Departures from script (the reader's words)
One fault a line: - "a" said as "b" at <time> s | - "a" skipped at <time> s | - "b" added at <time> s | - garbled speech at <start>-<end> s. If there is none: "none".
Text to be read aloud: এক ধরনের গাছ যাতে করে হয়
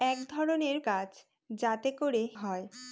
none